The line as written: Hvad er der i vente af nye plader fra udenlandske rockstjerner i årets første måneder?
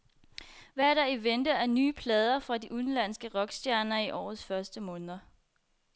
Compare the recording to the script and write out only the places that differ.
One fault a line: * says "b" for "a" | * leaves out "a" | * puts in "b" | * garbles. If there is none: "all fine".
* puts in "de"